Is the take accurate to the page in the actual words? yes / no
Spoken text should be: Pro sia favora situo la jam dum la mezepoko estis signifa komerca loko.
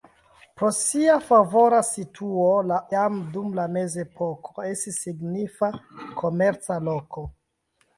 yes